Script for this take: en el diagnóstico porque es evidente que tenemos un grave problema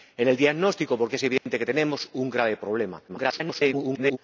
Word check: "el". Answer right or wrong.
right